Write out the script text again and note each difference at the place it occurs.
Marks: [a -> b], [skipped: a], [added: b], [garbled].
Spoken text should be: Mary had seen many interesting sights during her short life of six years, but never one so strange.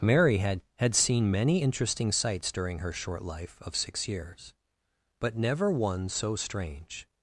Mary had [added: had] seen many interesting sights during her short life of six years, but never one so strange.